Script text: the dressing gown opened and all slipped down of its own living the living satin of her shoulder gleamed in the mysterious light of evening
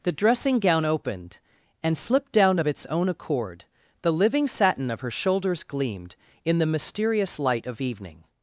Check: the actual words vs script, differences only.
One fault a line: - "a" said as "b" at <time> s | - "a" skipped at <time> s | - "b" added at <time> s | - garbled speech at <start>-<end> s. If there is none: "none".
- "all" skipped at 2.0 s
- "living" said as "accord" at 3.1 s
- "shoulder" said as "shoulders" at 5.1 s